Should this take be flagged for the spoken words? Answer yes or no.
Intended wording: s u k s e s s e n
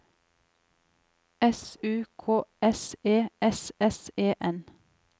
no